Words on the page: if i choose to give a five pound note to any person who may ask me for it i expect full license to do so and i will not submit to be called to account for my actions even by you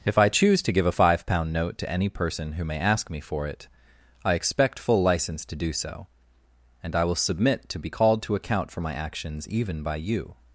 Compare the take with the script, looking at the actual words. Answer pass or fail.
fail